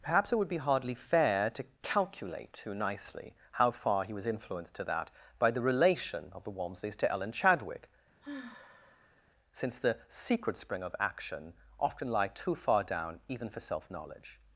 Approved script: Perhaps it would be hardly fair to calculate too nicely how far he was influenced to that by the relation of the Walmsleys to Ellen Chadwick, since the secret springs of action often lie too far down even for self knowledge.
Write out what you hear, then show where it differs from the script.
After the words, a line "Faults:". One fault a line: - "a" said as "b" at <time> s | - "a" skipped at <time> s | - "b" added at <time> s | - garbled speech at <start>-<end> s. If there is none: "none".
Perhaps it would be hardly fair to calculate too nicely how far he was influenced to that by the relation of the Walmsleys to Ellen Chadwick, since the secret spring of action often lie too far down even for self knowledge.
Faults:
- "springs" said as "spring" at 10.6 s